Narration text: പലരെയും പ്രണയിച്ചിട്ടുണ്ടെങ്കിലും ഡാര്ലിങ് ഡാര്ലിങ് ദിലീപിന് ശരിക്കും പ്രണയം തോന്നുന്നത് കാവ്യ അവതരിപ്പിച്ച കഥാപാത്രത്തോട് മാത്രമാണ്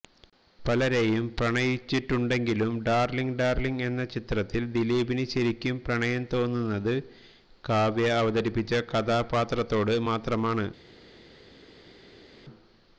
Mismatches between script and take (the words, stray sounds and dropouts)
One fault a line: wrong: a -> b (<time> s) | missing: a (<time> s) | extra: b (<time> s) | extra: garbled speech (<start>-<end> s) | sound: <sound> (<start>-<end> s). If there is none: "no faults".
extra: എന്ന ചിത്രത്തില് (3.9 s)